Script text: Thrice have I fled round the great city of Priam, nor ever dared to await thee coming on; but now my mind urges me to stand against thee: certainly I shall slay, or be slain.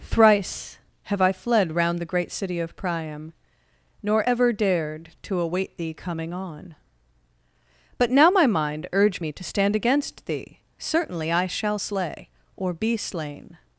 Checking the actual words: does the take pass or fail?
fail